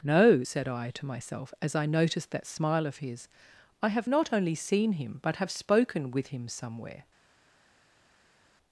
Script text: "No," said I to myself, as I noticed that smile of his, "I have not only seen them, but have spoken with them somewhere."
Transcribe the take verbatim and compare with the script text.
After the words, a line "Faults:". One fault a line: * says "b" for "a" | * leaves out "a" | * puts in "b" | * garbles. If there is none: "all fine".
"No," said I to myself, as I noticed that smile of his, "I have not only seen him, but have spoken with him somewhere."
Faults:
* says "him" for "them"
* says "him" for "them"